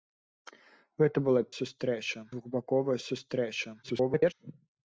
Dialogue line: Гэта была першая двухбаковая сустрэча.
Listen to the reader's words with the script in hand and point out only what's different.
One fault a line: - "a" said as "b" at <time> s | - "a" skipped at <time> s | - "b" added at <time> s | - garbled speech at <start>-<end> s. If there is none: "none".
- "першая" said as "сустрэча" at 1.6 s
- garbled speech at 3.8-4.3 s